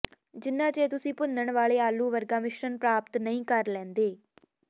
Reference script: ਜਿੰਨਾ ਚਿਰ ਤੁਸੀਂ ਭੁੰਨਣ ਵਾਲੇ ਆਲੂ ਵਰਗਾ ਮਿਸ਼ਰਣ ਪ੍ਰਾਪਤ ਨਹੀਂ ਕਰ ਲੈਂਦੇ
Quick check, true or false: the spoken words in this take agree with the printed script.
true